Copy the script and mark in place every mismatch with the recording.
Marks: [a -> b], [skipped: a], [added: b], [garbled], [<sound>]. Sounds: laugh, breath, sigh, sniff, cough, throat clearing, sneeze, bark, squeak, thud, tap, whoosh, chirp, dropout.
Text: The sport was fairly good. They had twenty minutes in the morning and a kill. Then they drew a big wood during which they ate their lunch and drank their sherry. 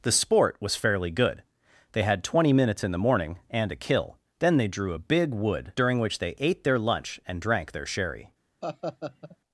The sport was fairly good. They had twenty minutes in the morning and a kill. Then they drew a big wood during which they ate their lunch and drank their sherry. [laugh]